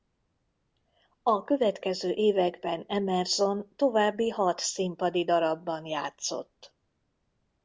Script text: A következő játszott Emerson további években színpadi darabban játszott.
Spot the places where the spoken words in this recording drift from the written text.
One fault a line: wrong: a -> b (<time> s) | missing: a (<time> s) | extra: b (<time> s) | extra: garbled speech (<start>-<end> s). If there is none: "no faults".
wrong: játszott -> években (2.1 s)
wrong: években -> hat (4.3 s)